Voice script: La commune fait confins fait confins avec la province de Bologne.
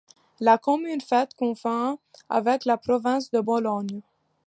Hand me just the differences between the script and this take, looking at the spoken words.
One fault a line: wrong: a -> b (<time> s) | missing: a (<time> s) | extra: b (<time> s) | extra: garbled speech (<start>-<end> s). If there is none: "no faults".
missing: fait confins (2.0 s)